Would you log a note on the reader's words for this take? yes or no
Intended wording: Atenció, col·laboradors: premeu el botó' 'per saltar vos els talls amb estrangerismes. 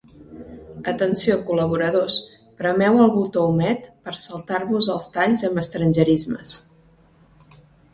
yes